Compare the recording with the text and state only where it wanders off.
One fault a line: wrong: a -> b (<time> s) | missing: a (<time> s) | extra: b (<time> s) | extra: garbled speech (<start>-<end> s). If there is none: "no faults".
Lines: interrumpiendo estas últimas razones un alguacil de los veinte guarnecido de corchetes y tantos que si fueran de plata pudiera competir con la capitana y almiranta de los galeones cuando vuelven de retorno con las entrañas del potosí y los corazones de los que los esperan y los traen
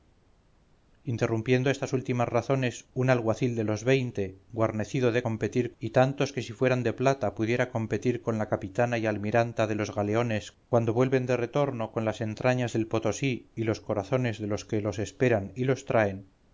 wrong: corchetes -> competir (5.2 s)